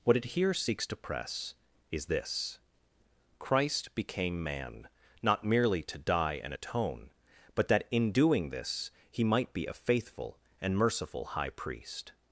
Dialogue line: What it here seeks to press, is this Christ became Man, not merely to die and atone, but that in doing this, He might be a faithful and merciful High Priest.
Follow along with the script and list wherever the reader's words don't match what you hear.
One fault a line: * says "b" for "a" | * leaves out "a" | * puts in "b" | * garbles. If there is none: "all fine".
all fine